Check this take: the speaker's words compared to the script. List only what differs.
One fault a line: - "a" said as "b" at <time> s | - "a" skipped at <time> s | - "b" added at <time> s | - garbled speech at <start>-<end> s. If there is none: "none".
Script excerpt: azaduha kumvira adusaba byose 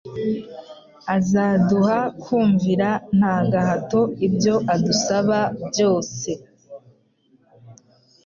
- "nta gahato ibyo" added at 3.2 s